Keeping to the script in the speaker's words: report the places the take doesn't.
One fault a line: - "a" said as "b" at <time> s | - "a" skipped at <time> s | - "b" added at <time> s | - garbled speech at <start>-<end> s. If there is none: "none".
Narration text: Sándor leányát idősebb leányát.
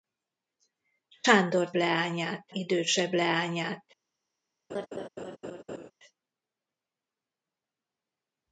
none